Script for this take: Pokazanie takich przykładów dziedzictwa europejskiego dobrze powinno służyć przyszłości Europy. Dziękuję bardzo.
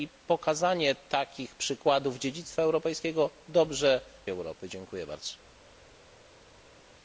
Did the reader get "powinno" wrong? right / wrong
wrong